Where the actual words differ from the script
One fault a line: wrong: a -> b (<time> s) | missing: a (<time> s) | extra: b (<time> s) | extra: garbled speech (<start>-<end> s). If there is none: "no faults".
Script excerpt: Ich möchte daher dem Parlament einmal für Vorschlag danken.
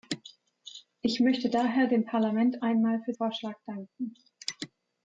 no faults